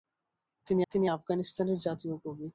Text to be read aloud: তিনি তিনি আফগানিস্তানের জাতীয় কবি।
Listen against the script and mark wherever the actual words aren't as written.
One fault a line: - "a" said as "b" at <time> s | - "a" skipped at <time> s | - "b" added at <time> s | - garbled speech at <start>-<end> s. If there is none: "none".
none